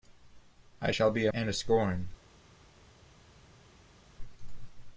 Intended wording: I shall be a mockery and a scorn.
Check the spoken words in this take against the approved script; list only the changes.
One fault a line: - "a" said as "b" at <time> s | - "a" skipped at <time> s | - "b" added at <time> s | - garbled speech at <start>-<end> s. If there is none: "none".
- "mockery" skipped at 1.3 s